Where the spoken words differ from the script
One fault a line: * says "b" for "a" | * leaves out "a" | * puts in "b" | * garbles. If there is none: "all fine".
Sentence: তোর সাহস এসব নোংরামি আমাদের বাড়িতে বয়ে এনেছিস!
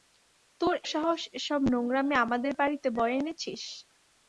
all fine